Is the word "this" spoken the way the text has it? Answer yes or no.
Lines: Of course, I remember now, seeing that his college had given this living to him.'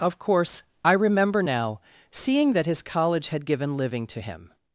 no